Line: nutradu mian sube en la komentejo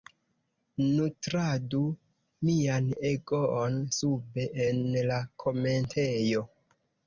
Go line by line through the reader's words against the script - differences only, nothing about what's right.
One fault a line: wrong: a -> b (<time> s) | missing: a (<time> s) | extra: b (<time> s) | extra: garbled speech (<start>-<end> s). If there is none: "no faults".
extra: egoon (3.1 s)